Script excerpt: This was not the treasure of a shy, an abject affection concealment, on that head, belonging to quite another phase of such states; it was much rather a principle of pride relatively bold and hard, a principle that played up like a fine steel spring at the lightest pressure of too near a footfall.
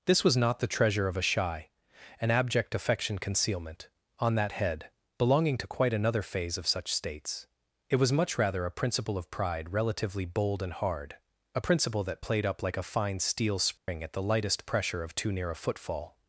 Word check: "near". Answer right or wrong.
right